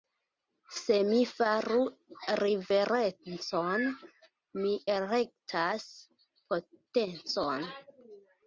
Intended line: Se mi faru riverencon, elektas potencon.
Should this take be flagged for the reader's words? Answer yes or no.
yes